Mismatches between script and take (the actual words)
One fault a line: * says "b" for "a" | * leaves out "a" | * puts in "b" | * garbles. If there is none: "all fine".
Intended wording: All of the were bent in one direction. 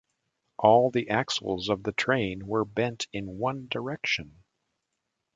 * puts in "the axles"
* puts in "train"